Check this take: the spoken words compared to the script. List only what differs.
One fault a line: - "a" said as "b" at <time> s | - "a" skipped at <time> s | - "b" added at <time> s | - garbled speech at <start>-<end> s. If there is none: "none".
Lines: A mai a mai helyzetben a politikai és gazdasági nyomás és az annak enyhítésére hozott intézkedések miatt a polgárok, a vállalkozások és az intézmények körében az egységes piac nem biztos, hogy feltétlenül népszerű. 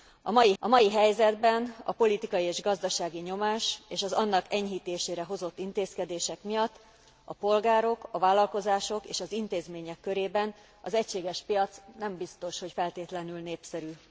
none